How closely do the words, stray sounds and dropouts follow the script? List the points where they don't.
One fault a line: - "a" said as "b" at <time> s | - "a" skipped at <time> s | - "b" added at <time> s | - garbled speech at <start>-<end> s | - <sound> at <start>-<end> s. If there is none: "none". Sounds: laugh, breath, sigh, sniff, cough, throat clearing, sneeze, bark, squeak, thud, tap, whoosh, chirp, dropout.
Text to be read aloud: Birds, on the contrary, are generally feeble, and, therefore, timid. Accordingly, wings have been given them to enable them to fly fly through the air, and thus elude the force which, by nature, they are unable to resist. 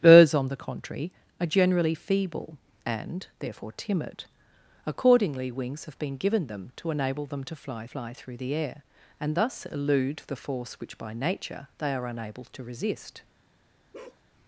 - bark at 13.9-14.2 s